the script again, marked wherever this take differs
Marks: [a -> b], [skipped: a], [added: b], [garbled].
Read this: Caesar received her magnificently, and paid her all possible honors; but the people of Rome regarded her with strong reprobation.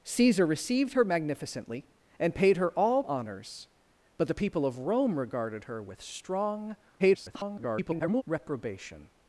Caesar received her magnificently, and paid her all [skipped: possible] honors; but the people of Rome regarded her with strong [garbled] reprobation.